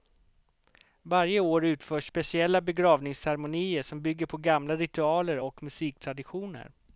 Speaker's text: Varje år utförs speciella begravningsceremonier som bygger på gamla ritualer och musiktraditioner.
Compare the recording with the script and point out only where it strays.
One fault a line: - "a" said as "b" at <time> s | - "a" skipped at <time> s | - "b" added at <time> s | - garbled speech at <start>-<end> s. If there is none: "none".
none